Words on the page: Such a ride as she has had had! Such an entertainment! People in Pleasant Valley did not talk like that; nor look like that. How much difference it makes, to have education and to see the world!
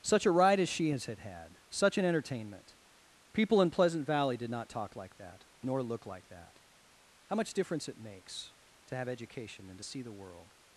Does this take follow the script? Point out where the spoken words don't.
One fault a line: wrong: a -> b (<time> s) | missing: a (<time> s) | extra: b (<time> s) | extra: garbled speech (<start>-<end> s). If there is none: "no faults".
no faults